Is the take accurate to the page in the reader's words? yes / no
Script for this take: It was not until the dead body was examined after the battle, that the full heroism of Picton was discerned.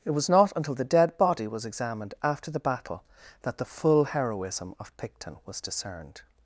yes